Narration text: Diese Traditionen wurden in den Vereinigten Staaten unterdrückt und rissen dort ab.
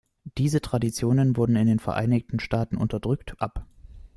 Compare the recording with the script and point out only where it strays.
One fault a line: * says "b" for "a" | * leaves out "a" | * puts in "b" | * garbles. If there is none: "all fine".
* leaves out "und rissen dort"